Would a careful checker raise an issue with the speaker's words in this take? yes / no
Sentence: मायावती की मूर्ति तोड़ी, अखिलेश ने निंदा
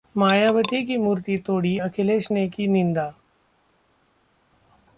yes